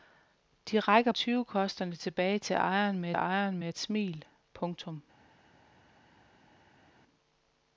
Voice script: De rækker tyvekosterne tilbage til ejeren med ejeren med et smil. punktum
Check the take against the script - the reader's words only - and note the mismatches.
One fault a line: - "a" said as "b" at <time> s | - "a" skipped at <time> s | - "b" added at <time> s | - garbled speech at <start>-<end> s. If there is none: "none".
none